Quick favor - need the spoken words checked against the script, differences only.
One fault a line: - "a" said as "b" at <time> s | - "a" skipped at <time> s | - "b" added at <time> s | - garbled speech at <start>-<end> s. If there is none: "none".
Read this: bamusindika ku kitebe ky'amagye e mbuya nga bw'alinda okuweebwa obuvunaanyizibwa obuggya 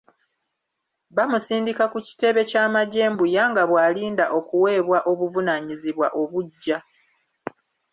none